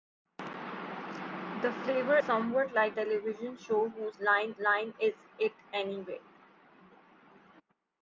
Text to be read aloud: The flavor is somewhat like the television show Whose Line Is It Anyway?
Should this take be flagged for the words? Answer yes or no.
yes